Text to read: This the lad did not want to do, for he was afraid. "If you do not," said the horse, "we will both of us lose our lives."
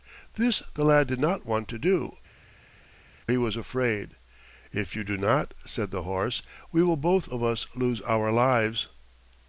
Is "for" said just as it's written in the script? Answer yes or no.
no